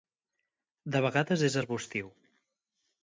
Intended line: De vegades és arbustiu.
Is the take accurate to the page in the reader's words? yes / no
yes